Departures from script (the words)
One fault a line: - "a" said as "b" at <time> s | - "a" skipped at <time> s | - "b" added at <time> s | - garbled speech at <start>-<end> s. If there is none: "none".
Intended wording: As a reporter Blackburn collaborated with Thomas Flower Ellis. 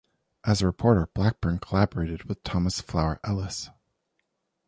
none